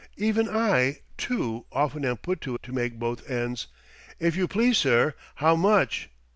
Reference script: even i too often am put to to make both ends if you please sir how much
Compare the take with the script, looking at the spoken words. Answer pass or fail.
pass